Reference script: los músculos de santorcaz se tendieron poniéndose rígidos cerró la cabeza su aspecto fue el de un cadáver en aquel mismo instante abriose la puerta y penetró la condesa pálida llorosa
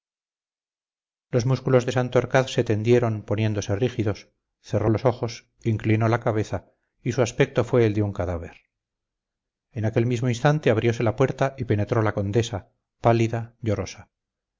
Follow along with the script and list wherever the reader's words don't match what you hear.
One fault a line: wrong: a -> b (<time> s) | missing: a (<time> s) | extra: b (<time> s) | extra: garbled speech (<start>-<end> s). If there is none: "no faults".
extra: los ojos inclinó (4.9 s)
extra: y (7.0 s)